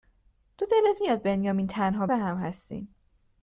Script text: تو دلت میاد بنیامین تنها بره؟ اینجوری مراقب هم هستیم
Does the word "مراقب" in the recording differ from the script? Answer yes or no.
yes